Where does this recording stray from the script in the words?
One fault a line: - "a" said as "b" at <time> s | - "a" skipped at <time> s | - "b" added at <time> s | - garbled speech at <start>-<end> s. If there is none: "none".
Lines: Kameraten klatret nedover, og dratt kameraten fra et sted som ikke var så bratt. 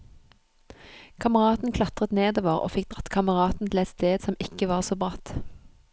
- "fikk" added at 2.8 s
- "fra" said as "til" at 3.7 s